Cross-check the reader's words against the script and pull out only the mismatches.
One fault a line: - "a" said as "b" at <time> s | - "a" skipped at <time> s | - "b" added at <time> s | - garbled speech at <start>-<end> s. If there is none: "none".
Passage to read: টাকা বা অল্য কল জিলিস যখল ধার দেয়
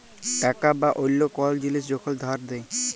none